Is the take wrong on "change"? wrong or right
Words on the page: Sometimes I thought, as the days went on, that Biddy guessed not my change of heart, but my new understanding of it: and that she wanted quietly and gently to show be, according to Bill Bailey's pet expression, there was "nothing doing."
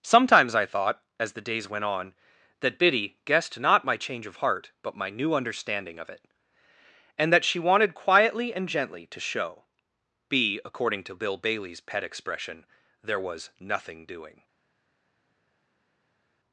right